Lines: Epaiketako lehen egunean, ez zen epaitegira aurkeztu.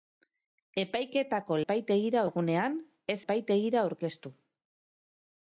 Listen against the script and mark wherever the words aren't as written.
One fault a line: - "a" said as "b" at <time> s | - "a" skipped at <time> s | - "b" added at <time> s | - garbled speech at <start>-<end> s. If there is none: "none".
- "lehen" said as "epaitegira" at 1.6 s
- "zen" skipped at 3.2 s